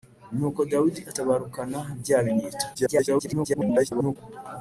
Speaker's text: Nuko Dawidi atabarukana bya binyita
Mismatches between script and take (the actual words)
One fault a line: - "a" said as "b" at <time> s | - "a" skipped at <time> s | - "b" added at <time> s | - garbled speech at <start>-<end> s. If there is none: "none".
- garbled speech at 2.7-4.2 s